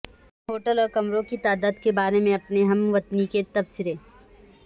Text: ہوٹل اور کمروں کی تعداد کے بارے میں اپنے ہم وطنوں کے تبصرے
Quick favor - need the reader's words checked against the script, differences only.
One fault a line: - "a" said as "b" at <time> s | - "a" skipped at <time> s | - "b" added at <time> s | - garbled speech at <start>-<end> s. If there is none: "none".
none